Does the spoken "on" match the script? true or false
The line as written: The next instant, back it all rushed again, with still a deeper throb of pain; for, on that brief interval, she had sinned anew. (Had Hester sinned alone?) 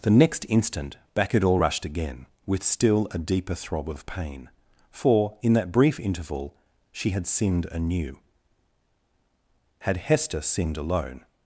false